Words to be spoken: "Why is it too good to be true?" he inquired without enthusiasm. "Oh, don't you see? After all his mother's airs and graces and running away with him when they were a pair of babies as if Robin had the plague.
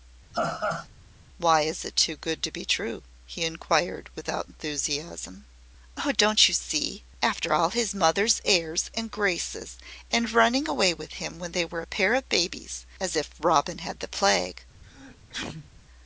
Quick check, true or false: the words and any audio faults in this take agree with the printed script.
false